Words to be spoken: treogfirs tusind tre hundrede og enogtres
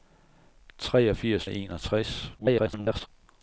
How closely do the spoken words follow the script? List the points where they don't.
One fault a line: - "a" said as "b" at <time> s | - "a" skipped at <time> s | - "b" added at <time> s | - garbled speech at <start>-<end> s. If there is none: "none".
- "tusind tre hundrede" skipped at 1.5 s
- garbled speech at 2.4-3.1 s